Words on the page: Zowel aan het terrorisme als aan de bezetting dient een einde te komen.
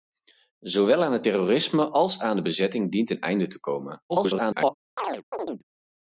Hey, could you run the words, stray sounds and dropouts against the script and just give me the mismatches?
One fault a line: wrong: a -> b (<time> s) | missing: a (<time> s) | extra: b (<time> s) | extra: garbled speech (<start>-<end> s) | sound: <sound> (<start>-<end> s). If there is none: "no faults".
extra: garbled speech (4.1-4.7 s)
sound: chirp (5.0-5.6 s)